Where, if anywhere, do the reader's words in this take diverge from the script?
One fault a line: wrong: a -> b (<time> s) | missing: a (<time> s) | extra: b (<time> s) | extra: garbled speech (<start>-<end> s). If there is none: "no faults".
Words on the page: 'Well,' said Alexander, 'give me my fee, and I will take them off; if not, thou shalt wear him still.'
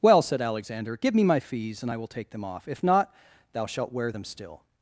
wrong: fee -> fees (1.4 s)
wrong: him -> them (4.1 s)